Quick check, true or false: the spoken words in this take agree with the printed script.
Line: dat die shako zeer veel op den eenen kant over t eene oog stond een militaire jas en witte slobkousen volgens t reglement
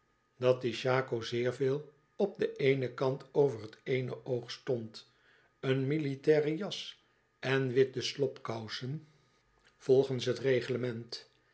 true